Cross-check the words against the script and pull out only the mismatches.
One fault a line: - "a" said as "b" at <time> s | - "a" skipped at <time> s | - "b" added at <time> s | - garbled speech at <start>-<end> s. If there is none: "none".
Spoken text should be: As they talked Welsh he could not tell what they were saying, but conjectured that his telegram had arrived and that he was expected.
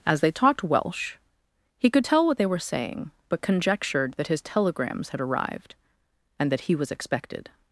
- "not" skipped at 2.0 s
- "telegram" said as "telegrams" at 4.4 s